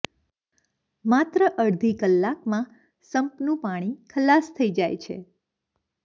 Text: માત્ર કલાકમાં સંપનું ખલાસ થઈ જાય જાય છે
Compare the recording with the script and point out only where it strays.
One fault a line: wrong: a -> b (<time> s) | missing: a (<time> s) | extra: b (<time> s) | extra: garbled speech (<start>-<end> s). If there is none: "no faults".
extra: અડધી (1.6 s)
extra: પાણી (3.6 s)
missing: જાય (5.0 s)